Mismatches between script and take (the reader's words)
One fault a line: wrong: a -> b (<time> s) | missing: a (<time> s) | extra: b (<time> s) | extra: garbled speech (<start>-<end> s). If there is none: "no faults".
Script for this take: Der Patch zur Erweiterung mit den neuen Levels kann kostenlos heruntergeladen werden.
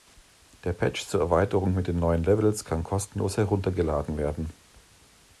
no faults